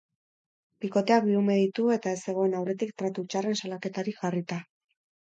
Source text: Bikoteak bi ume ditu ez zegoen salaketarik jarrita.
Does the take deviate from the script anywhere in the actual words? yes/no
yes